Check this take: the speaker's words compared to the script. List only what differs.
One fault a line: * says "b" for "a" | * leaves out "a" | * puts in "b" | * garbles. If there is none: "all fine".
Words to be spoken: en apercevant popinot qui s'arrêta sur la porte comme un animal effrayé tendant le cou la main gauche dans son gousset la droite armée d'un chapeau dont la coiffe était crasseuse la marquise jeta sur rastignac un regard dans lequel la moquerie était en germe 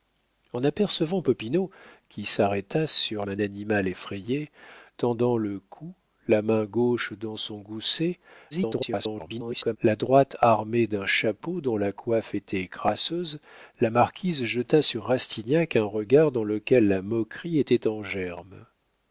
* leaves out "la porte comme"
* garbles